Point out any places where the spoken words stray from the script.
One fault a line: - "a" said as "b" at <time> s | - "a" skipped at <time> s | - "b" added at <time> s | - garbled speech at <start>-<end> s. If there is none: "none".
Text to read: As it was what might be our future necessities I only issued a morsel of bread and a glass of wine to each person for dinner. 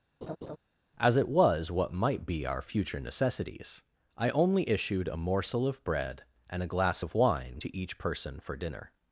none